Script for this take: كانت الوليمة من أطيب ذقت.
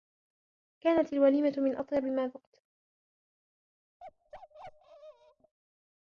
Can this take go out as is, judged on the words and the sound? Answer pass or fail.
fail